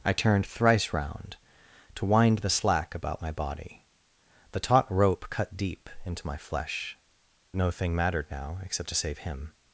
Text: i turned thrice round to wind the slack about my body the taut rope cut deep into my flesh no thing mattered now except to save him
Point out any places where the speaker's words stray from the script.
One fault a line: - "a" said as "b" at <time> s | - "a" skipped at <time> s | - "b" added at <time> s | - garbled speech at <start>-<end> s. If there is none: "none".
none